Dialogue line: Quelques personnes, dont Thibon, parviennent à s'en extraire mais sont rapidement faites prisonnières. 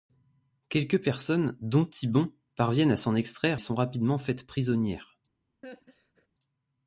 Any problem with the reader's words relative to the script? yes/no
yes